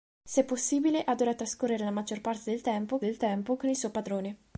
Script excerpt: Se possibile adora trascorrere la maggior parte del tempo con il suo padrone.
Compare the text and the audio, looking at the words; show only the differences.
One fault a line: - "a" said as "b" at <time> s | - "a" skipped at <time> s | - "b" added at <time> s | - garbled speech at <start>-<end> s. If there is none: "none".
- "del tempo" added at 3.0 s